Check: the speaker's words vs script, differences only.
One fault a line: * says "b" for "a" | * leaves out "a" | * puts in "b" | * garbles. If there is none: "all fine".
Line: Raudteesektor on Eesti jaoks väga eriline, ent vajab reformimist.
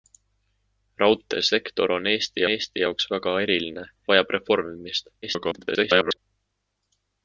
* puts in "Eesti"
* leaves out "ent"
* garbles